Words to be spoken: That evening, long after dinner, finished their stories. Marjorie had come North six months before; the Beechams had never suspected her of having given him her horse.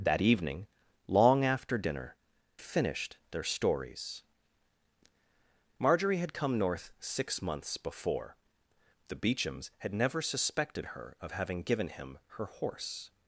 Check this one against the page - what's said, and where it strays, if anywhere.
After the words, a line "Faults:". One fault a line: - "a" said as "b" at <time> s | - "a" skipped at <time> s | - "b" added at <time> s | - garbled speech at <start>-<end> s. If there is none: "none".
That evening, long after dinner, finished their stories. Marjorie had come North six months before; the Beechams had never suspected her of having given him her horse.
Faults:
none